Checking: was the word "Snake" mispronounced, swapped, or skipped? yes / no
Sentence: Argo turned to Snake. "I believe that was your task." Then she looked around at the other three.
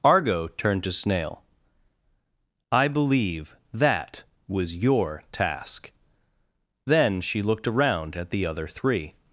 yes